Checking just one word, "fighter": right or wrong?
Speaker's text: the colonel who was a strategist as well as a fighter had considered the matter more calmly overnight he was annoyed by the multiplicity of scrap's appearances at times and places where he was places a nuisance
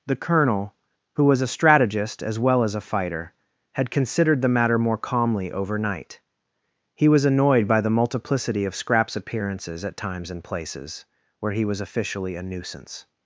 right